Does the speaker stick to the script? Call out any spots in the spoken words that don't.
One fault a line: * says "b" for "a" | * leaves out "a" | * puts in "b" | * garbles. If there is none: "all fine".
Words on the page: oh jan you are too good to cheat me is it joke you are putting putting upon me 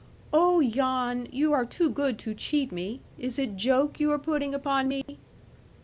* leaves out "putting"